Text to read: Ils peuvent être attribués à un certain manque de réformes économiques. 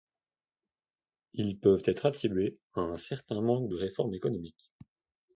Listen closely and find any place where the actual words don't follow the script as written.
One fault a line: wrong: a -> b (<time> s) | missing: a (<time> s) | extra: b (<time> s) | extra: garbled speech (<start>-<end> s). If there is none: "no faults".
no faults